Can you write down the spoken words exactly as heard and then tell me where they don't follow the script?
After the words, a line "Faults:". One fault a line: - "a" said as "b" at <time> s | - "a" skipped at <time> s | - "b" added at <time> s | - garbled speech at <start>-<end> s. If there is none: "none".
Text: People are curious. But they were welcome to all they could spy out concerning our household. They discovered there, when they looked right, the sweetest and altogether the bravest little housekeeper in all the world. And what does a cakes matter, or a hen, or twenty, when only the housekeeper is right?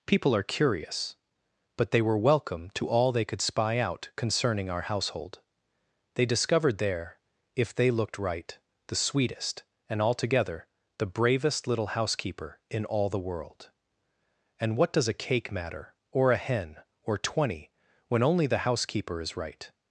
People are curious. But they were welcome to all they could spy out concerning our household. They discovered there, if they looked right, the sweetest and altogether the bravest little housekeeper in all the world. And what does a cake matter, or a hen, or twenty, when only the housekeeper is right?
Faults:
- "when" said as "if" at 7.5 s
- "cakes" said as "cake" at 15.2 s